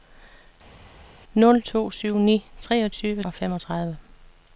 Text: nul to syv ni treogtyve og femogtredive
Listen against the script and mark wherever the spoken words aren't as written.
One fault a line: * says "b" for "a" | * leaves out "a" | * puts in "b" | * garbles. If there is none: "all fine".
all fine